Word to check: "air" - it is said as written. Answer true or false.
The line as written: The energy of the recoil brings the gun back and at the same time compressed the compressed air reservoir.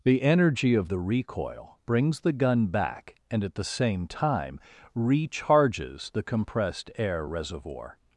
true